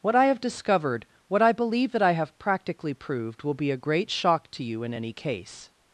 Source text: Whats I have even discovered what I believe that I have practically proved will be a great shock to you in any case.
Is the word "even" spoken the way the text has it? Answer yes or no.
no